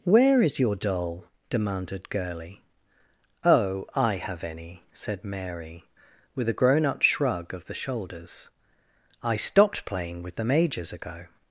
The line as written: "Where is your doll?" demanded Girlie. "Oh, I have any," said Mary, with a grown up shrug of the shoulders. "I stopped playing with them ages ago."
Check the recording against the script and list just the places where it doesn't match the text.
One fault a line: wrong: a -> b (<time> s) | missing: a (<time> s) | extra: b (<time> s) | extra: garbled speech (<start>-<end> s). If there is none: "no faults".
no faults